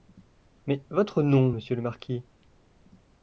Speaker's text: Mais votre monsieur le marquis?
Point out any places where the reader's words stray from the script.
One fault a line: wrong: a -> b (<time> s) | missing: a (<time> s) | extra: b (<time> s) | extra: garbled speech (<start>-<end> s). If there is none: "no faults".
extra: nom (1.2 s)